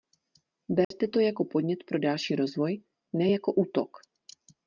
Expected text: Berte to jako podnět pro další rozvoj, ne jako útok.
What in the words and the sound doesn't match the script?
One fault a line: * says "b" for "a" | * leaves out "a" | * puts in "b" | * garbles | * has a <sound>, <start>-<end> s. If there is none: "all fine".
* has a dropout, 0.8-0.9 s